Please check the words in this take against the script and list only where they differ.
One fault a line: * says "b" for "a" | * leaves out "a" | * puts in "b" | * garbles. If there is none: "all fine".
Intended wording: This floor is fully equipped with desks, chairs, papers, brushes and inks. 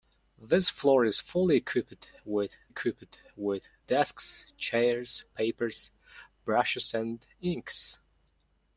* puts in "equipped with"